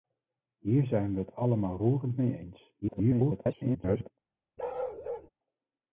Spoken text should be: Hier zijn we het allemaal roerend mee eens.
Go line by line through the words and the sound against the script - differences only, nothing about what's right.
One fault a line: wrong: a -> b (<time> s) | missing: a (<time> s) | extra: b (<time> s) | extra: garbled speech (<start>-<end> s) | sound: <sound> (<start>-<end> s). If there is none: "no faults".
extra: garbled speech (2.8-4.1 s)
sound: bark (4.6-5.3 s)